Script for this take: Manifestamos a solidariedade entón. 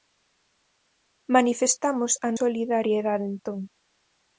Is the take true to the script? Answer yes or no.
yes